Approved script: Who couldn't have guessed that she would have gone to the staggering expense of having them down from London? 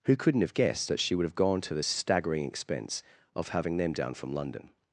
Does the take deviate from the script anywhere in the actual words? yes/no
no